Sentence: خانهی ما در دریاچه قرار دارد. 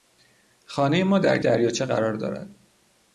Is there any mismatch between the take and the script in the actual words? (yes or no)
no